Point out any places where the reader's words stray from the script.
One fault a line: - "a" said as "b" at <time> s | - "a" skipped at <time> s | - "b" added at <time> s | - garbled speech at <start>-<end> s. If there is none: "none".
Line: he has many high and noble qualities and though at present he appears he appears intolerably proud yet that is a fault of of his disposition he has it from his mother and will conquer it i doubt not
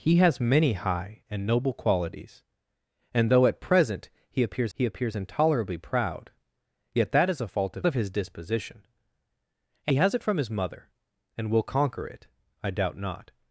none